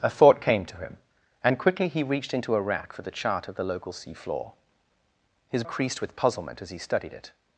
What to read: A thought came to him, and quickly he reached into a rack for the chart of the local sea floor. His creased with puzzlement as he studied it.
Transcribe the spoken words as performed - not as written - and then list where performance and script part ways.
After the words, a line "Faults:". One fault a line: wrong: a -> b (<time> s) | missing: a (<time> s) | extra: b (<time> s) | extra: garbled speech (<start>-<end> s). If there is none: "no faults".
A thought came to him, and quickly he reached into a rack for the chart of the local sea floor. His creased with puzzlement as he studied it.
Faults:
no faults